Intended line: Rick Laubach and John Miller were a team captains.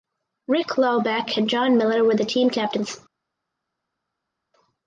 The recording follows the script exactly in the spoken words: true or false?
false